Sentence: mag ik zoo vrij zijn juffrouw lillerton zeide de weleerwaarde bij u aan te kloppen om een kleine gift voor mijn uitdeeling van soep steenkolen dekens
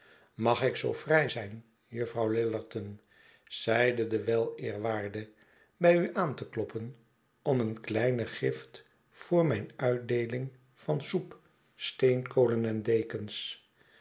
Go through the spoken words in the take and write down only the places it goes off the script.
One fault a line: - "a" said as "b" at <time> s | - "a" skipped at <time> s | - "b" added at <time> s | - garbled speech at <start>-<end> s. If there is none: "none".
- "en" added at 12.6 s